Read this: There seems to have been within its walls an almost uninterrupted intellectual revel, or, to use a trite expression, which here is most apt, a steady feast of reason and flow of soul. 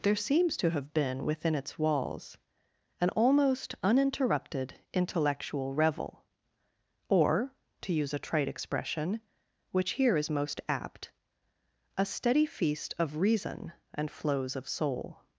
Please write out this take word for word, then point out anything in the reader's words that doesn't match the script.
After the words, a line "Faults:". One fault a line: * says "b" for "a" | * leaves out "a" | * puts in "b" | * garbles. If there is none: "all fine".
There seems to have been within its walls an almost uninterrupted intellectual revel, or, to use a trite expression, which here is most apt, a steady feast of reason and flows of soul.
Faults:
* says "flows" for "flow"